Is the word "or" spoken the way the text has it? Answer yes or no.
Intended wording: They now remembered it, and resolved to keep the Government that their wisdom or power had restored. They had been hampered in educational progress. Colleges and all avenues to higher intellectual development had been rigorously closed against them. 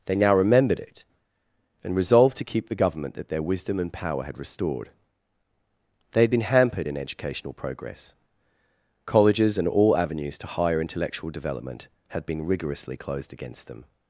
no